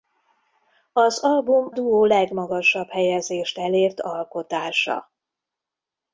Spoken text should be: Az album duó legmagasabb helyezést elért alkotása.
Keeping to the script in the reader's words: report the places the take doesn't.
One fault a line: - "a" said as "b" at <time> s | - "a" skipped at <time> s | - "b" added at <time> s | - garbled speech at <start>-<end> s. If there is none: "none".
none